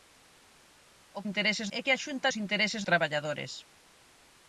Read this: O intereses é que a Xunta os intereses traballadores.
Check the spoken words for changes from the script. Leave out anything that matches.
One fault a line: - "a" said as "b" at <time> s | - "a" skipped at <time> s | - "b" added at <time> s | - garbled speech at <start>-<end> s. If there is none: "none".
none